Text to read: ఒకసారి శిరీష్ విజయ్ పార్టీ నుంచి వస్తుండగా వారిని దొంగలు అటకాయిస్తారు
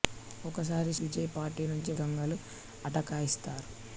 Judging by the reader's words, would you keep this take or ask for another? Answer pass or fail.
fail